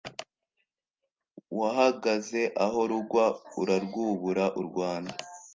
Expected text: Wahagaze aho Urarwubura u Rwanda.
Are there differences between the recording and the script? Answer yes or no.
yes